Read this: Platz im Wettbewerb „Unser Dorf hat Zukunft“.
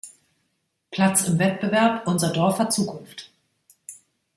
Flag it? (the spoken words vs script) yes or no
no